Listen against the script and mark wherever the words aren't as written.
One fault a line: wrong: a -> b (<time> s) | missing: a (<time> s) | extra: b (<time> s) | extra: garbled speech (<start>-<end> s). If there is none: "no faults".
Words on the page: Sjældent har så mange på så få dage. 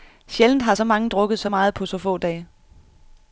extra: drukket så meget (1.1 s)